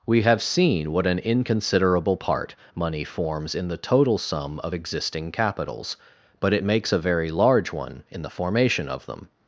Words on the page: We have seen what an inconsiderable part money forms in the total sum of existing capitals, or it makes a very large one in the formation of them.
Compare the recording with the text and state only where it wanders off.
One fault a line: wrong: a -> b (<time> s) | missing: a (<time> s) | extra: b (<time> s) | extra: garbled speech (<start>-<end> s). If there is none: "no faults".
wrong: or -> but (6.4 s)